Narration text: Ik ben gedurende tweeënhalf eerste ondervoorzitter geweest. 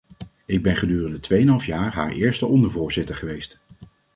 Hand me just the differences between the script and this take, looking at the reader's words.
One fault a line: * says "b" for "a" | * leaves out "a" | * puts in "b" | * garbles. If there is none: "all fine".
* puts in "jaar haar"